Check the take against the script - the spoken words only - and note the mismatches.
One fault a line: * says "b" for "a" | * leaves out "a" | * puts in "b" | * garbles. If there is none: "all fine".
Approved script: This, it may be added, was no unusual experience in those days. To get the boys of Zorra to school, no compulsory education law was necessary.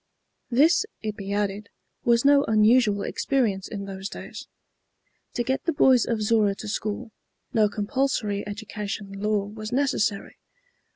* leaves out "may"